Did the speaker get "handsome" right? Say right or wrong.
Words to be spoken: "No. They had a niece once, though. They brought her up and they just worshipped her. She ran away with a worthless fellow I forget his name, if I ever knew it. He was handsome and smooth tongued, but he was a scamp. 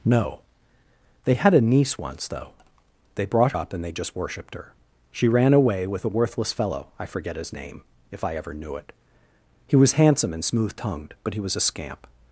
right